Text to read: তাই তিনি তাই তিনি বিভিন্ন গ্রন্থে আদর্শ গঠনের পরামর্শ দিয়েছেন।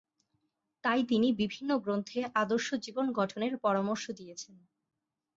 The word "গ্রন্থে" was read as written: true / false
true